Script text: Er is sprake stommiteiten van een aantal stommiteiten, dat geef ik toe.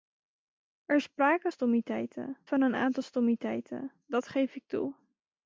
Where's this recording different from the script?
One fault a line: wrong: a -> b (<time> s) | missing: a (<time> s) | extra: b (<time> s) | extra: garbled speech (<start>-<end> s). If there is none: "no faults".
no faults